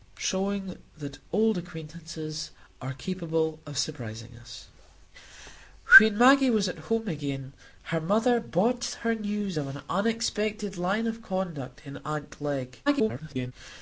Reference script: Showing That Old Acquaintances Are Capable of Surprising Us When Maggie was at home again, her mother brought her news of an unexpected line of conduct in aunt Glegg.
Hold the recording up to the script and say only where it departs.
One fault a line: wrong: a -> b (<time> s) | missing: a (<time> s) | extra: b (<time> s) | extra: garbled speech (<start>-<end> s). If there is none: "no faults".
extra: garbled speech (12.9-13.5 s)